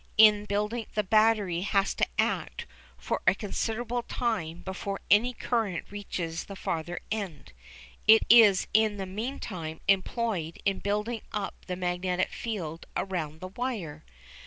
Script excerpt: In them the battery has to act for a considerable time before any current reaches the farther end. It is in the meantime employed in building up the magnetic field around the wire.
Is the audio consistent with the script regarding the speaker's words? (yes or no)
no